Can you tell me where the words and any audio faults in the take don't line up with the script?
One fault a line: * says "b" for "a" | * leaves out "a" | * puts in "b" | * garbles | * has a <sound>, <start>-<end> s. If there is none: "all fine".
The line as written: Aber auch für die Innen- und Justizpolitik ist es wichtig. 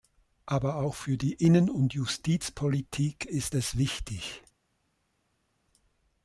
all fine